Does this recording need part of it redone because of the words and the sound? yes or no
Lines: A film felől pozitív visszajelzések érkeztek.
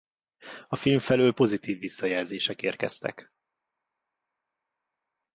no